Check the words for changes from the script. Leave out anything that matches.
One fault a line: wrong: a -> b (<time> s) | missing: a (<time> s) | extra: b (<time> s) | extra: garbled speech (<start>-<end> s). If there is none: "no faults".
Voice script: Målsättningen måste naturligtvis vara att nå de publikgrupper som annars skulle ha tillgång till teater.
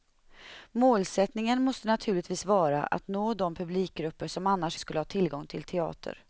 no faults